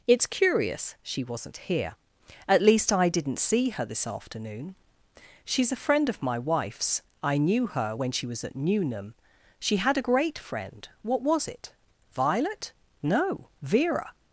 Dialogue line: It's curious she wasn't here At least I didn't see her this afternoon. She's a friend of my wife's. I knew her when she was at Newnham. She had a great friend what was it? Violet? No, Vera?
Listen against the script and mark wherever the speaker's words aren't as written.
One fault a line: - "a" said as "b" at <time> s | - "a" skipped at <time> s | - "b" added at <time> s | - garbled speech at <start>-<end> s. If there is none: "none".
none